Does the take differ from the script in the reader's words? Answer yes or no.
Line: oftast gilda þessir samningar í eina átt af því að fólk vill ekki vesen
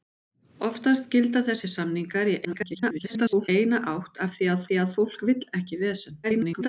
yes